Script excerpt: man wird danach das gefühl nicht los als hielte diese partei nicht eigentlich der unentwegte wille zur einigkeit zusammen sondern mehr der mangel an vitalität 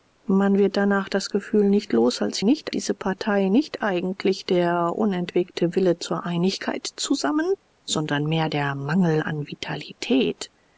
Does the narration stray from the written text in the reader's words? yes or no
yes